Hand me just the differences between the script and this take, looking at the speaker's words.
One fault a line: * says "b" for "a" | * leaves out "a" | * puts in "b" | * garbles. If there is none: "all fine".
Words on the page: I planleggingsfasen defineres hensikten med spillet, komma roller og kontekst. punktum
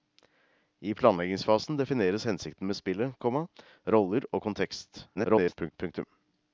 * garbles